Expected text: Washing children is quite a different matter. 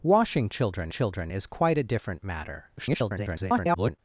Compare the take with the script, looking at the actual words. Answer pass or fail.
fail